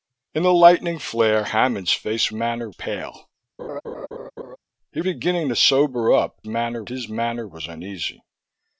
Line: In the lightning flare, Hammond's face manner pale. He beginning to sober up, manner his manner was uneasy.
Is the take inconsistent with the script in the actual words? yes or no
no